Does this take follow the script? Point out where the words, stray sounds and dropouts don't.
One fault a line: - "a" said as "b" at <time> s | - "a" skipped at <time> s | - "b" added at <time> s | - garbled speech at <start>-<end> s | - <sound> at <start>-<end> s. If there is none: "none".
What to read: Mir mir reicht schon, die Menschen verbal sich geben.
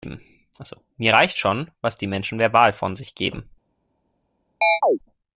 - "mir" skipped at 1.1 s
- "was" added at 1.8 s
- "von" added at 2.7 s
- chirp at 4.6-5.0 s